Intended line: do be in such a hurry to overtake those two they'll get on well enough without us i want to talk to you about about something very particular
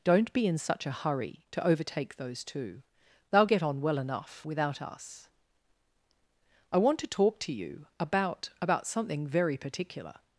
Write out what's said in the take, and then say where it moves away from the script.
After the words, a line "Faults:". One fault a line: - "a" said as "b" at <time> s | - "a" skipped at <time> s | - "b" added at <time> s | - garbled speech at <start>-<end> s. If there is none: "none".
don't be in such a hurry to overtake those two they'll get on well enough without us i want to talk to you about about something very particular
Faults:
- "do" said as "don't" at 0.0 s